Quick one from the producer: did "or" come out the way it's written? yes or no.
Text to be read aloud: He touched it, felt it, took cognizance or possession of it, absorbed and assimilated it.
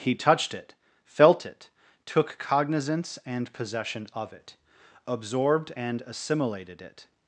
no